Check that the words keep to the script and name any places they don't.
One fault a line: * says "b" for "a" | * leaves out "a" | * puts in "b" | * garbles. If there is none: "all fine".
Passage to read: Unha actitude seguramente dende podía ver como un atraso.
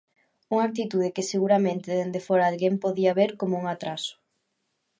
* puts in "que"
* puts in "fóra alguén"